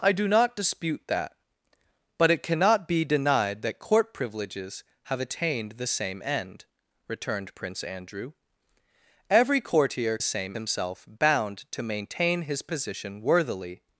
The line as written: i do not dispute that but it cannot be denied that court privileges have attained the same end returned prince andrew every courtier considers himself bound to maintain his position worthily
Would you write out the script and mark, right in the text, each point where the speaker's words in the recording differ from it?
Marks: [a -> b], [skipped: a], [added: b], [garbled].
i do not dispute that but it cannot be denied that court privileges have attained the same end returned prince andrew every courtier [considers -> same] himself bound to maintain his position worthily